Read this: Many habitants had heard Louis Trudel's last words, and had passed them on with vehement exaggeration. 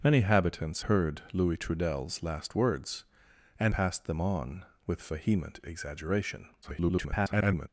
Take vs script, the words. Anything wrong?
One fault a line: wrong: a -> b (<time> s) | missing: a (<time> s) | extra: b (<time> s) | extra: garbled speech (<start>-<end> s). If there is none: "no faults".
missing: had (0.8 s)
missing: had (3.7 s)
extra: garbled speech (6.6-7.7 s)